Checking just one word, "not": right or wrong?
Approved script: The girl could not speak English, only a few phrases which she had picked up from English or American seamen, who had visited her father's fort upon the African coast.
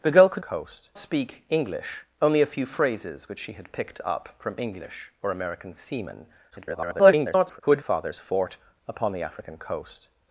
wrong